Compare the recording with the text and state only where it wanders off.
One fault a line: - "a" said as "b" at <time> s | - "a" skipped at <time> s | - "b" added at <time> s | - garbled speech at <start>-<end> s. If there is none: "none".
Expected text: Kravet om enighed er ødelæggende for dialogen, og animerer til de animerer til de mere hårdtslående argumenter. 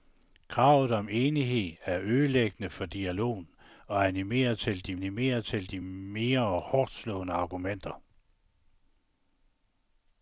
none